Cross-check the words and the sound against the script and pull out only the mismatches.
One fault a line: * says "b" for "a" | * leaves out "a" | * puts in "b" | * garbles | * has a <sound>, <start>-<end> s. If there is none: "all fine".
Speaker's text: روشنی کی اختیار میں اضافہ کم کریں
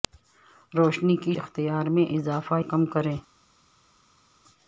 all fine